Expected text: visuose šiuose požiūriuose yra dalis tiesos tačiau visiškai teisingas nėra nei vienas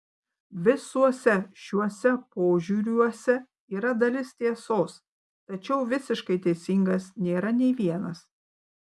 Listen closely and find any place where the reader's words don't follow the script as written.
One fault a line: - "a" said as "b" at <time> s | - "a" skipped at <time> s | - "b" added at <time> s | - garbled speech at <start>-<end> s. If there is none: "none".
none